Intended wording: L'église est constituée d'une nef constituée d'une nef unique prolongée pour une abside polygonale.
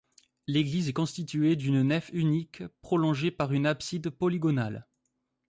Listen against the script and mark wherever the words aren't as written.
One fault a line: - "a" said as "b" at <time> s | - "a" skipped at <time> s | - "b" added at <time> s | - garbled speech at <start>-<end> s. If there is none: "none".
- "constituée d'une nef" skipped at 2.1 s
- "pour" said as "par" at 3.3 s